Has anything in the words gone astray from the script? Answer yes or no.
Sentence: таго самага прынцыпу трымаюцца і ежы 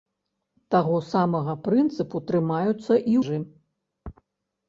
no